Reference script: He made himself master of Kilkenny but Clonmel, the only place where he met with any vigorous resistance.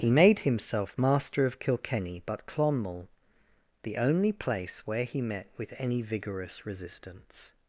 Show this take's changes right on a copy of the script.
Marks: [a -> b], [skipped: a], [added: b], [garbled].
He made himself master of Kilkenny but Clonmel, the only place where he met with any vigorous resistance.